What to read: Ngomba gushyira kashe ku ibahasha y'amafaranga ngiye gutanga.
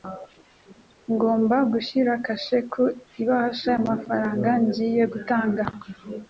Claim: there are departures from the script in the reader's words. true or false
false